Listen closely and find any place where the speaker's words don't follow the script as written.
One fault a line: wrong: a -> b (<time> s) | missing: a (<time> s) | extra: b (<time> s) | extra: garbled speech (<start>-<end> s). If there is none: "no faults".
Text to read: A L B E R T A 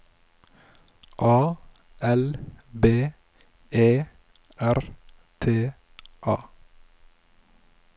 no faults